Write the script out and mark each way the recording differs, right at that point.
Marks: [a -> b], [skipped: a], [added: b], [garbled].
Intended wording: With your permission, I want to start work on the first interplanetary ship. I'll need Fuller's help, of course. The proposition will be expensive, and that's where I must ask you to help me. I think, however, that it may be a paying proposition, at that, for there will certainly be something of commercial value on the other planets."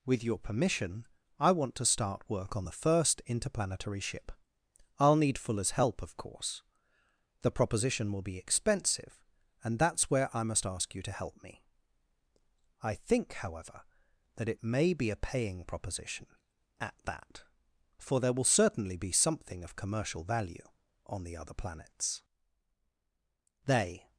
With your permission, I want to start work on the first interplanetary ship. I'll need Fuller's help, of course. The proposition will be expensive, and that's where I must ask you to help me. I think, however, that it may be a paying proposition, at that, for there will certainly be something of commercial value on the other planets." [added: They]